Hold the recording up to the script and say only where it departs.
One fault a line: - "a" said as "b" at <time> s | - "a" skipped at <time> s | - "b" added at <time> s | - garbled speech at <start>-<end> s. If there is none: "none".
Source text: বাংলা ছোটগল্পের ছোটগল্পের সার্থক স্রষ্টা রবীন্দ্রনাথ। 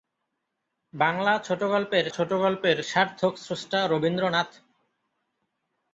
none